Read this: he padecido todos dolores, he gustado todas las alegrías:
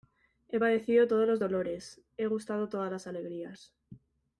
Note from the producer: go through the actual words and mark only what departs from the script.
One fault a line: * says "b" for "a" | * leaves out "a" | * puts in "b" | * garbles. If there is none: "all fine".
* puts in "los"